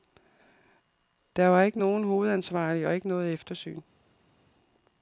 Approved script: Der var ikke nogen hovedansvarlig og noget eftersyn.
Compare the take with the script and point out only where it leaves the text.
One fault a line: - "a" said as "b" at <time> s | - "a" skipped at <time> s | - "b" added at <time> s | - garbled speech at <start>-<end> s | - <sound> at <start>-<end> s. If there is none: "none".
- "ikke" added at 2.9 s